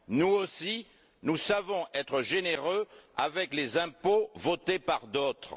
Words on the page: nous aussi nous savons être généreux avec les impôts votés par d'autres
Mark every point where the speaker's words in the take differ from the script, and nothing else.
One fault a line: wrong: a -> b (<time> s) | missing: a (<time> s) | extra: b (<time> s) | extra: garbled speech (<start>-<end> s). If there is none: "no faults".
no faults